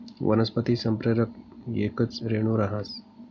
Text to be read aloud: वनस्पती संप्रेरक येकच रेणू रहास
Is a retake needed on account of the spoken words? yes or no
no